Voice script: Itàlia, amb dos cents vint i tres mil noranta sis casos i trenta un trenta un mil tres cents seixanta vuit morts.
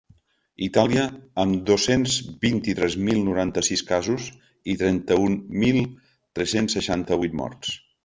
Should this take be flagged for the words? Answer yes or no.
yes